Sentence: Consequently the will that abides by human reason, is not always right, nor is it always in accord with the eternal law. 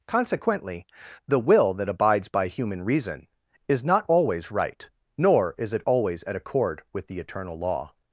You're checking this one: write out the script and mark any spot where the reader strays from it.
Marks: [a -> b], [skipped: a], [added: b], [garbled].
Consequently the will that abides by human reason, is not always right, nor is it always [in -> at] accord with the eternal law.